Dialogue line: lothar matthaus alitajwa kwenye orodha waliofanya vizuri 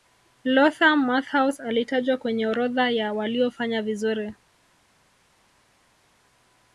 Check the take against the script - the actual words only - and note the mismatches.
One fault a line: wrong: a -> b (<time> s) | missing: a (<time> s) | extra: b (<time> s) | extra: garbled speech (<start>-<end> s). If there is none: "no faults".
extra: ya (2.9 s)